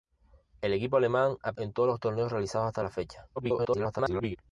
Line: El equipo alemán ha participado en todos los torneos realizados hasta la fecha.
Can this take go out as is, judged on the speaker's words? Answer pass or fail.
fail